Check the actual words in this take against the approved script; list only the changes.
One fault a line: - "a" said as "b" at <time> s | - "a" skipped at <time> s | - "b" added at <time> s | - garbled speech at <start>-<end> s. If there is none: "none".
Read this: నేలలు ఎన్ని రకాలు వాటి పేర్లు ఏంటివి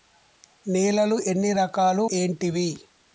- "వాటి పేర్లు" skipped at 2.0 s